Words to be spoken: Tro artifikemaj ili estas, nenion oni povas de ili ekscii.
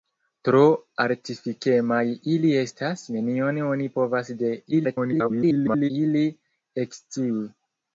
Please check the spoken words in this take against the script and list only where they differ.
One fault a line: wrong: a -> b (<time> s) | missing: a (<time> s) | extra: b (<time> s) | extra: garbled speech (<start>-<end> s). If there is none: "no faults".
extra: garbled speech (4.7-5.9 s)